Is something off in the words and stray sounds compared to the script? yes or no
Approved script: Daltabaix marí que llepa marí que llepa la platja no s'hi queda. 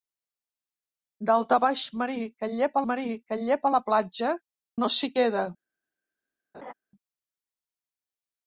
yes